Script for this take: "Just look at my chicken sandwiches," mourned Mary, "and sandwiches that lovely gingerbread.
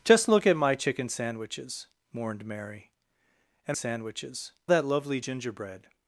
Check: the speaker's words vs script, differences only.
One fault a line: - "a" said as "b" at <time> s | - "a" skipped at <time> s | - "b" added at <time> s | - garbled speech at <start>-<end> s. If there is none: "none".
none